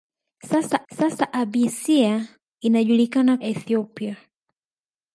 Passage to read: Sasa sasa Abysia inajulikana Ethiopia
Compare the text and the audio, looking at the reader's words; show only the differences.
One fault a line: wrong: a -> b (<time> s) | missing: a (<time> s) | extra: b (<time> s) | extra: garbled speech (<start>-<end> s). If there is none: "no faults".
no faults